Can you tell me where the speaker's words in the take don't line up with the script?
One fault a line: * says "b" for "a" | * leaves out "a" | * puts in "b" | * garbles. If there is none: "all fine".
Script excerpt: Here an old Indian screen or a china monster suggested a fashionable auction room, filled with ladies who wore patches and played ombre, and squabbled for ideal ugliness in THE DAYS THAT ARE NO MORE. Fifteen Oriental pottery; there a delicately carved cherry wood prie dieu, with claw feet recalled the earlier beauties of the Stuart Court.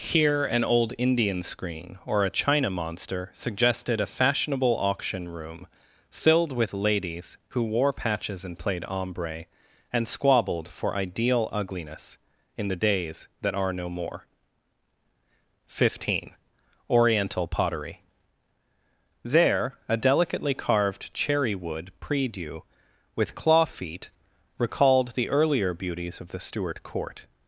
all fine